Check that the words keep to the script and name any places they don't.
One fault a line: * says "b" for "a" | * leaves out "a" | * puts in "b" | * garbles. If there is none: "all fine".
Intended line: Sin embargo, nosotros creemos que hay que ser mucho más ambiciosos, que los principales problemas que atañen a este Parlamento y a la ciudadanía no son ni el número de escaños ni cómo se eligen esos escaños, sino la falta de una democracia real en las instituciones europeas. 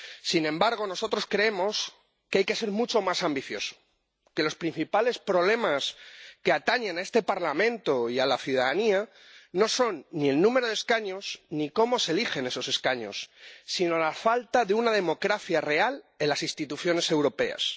all fine